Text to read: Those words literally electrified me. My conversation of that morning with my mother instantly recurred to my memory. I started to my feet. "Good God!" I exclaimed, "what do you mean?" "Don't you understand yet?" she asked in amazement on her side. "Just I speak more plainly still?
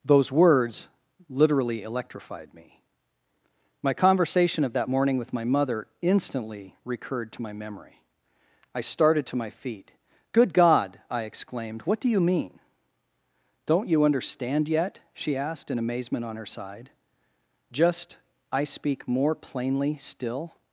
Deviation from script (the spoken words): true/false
false